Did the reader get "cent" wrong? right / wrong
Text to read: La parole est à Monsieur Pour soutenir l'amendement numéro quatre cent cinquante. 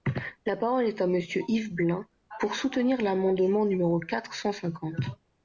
right